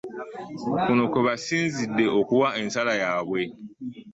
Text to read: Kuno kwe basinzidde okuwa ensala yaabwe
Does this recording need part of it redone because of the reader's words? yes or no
no